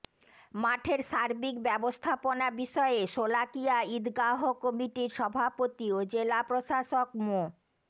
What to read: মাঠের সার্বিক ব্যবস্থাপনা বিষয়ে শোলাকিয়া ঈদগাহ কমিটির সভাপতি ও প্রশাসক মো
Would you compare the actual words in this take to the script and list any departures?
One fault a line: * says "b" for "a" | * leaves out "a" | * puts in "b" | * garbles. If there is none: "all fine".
* puts in "জেলা"